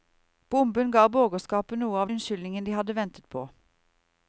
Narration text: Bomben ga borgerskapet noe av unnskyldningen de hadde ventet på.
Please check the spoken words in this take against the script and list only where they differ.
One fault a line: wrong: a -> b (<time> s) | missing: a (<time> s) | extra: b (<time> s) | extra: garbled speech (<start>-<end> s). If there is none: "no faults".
no faults